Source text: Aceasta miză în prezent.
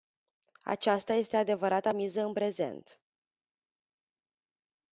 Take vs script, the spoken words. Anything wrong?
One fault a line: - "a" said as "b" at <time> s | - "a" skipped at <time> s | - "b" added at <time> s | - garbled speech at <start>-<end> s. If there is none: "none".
- "este adevărata" added at 1.1 s